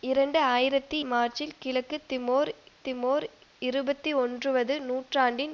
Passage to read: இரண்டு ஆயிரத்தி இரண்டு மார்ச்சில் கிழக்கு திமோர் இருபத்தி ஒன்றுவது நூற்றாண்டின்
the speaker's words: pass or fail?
fail